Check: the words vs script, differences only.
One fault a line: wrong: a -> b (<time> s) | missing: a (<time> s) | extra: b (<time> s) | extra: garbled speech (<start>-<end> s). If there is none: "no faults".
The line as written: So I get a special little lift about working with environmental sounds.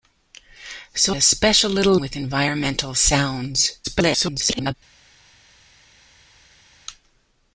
missing: I get (1.1 s)
missing: lift about working (2.0 s)
extra: garbled speech (3.8-4.7 s)